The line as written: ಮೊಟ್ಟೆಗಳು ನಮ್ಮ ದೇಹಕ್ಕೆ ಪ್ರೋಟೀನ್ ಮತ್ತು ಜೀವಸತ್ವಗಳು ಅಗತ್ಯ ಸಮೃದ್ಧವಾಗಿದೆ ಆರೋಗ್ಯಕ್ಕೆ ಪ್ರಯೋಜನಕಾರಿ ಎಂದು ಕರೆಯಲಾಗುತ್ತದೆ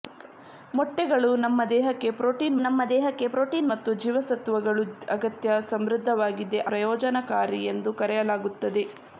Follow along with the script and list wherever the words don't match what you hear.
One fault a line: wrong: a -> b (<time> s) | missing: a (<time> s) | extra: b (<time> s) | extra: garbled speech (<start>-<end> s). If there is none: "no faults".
extra: ನಮ್ಮ ದೇಹಕ್ಕೆ ಪ್ರೋಟೀನ್ (2.6 s)
missing: ಆರೋಗ್ಯಕ್ಕೆ (6.6 s)